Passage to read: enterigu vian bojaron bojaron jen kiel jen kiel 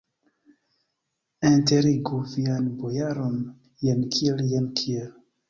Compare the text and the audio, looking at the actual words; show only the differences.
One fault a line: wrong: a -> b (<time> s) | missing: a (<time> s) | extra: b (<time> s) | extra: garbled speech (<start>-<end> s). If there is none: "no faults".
missing: bojaron (3.4 s)